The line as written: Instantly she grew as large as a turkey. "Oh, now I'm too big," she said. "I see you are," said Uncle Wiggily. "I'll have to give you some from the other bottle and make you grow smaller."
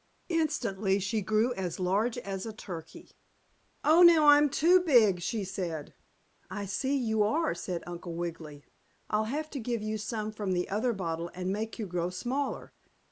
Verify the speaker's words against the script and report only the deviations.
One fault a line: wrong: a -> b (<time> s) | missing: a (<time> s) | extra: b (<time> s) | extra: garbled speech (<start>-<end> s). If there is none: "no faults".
no faults